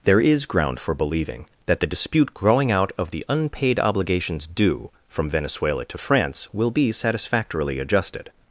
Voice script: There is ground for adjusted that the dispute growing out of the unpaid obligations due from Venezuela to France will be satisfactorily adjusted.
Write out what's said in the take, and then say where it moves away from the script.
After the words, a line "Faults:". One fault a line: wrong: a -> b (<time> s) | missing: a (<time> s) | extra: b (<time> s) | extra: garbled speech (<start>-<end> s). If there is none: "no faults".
There is ground for believing that the dispute growing out of the unpaid obligations due from Venezuela to France will be satisfactorily adjusted.
Faults:
wrong: adjusted -> believing (0.9 s)